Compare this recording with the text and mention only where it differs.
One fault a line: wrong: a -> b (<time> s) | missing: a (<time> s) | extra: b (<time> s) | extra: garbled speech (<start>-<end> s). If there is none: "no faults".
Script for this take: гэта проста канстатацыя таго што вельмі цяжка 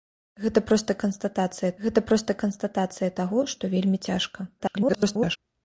extra: гэта проста канстатацыя (1.9 s)
extra: garbled speech (4.6-5.4 s)